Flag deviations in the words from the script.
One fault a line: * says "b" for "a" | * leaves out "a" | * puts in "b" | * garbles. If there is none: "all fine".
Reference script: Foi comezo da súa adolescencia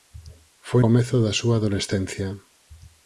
all fine